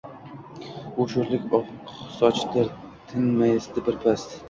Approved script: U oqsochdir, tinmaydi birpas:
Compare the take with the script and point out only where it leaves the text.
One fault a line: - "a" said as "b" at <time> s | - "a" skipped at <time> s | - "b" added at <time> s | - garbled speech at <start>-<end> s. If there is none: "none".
- "sho‘rlik" added at 1.1 s